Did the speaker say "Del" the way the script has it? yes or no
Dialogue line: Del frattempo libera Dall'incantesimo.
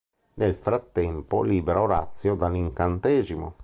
no